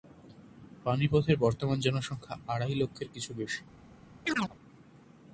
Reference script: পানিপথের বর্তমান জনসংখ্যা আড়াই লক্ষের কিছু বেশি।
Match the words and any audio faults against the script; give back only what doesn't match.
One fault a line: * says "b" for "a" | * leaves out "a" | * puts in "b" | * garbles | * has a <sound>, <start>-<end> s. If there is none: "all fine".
* has a chirp, 4.3-4.5 s